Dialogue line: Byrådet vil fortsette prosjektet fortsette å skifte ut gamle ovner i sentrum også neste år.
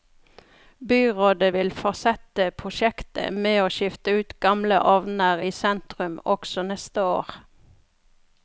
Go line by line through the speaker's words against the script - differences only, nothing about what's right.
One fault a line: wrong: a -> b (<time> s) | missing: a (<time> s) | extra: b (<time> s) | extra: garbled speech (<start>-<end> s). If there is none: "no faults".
wrong: fortsette -> med (3.5 s)